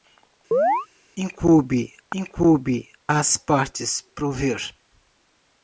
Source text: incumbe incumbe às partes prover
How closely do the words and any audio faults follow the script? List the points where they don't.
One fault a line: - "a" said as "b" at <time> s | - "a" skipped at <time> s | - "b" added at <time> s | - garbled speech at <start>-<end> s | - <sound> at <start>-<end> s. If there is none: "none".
- chirp at 0.5-0.9 s